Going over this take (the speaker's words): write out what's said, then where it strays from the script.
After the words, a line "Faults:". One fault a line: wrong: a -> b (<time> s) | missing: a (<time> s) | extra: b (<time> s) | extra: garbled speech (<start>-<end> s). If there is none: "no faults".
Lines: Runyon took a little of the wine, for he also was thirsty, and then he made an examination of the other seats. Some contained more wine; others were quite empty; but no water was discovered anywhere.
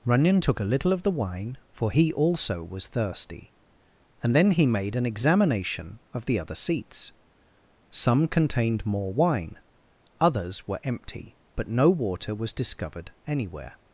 Runyon took a little of the wine, for he also was thirsty, and then he made an examination of the other seats. Some contained more wine; others were empty; but no water was discovered anywhere.
Faults:
missing: quite (10.8 s)